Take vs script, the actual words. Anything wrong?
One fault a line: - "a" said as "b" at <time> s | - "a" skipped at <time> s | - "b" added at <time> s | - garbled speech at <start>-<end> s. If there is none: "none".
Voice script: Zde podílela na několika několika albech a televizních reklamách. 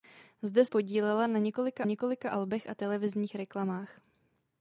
none